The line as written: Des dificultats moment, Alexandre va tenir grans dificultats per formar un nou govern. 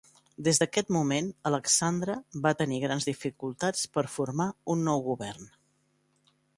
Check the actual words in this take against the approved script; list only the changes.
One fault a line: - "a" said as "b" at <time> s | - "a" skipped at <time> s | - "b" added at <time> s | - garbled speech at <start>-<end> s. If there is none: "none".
- "dificultats" said as "d'aquest" at 0.6 s